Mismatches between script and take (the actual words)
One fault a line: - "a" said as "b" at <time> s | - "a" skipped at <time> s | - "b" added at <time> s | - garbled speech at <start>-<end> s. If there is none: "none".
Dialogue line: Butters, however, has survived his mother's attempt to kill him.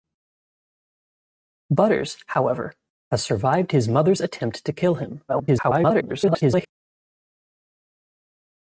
- garbled speech at 5.3-6.7 s